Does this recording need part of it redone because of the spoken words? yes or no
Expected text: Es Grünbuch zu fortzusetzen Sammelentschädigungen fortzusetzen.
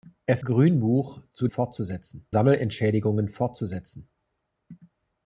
no